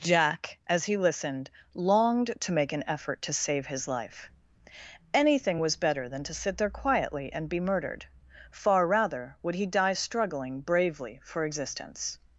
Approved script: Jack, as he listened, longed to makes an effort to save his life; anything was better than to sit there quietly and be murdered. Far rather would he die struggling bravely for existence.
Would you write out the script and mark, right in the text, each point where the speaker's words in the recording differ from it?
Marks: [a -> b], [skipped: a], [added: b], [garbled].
Jack, as he listened, longed to [makes -> make] an effort to save his life; anything was better than to sit there quietly and be murdered. Far rather would he die struggling bravely for existence.